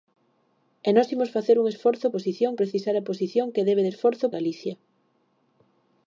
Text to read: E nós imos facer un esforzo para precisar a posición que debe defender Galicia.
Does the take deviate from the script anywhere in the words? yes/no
yes